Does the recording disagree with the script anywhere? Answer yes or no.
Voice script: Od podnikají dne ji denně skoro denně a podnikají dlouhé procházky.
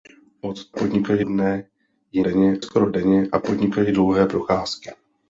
no